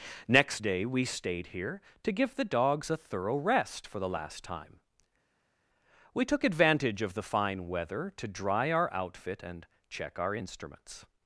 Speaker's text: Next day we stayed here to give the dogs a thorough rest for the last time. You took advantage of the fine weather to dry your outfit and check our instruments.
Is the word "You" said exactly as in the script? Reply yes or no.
no